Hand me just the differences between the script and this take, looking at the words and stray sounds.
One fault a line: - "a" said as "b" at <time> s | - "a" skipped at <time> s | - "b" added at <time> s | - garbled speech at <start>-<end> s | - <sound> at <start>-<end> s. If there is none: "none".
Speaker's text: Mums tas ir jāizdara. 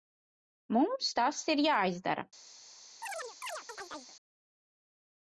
- chirp at 3.0-4.2 s